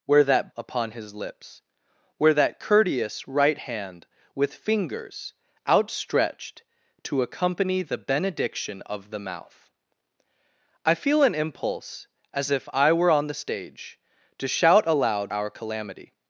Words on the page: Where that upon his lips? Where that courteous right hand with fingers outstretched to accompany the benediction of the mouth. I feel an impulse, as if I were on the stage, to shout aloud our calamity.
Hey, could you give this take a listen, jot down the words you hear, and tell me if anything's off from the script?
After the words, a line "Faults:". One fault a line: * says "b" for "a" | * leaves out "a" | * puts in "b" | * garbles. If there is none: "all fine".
Where that upon his lips? Where that courteous right hand with fingers outstretched to accompany the benediction of the mouth. I feel an impulse, as if I were on the stage, to shout aloud our calamity.
Faults:
all fine